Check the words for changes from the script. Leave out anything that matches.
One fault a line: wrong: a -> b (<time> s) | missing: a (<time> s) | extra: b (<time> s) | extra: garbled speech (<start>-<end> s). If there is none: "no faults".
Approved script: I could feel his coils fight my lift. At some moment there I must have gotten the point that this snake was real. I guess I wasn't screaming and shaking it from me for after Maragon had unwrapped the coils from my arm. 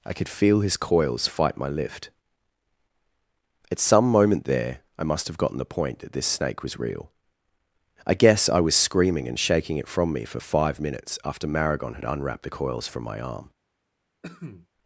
wrong: wasn't -> was (8.6 s)
extra: five minutes (10.4 s)